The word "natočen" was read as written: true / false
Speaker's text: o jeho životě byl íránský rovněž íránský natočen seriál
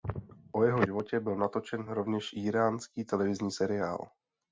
false